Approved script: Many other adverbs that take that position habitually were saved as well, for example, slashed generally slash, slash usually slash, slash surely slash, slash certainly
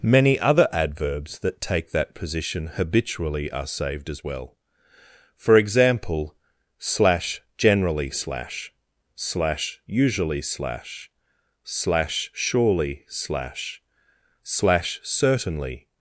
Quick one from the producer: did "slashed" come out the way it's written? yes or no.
no